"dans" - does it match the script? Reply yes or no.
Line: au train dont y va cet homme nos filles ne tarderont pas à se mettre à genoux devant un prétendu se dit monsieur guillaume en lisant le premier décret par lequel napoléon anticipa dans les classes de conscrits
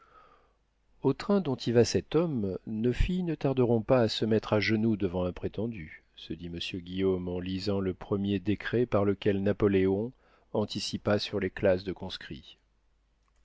no